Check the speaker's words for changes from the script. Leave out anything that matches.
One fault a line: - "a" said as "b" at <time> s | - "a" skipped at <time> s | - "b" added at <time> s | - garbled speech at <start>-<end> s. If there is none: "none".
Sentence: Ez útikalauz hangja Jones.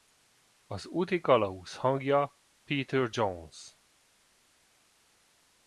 - "Ez" said as "Az" at 0.7 s
- "Peter" added at 2.6 s